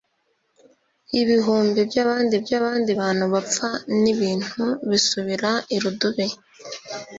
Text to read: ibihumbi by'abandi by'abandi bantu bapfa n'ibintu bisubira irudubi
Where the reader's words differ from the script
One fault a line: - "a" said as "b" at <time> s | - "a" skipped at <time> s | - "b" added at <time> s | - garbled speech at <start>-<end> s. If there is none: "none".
none